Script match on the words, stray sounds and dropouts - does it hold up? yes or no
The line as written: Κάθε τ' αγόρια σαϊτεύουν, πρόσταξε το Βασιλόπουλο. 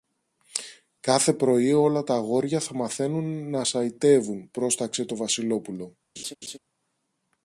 no